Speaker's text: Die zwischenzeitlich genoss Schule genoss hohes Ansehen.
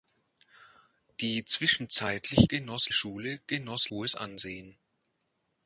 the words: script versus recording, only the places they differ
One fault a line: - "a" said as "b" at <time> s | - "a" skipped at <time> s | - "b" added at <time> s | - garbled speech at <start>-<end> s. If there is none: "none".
none